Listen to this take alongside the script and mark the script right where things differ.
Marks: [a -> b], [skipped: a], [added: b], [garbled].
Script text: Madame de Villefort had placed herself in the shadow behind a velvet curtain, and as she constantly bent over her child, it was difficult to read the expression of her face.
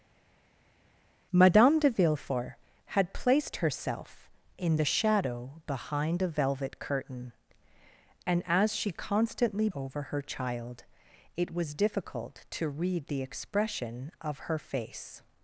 Madame de Villefort had placed herself in the shadow behind a velvet curtain, and as she constantly [skipped: bent] over her child, it was difficult to read the expression of her face.